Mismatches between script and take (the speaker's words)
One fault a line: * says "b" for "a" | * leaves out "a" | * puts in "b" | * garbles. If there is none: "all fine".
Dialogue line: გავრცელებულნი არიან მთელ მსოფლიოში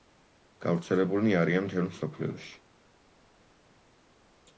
all fine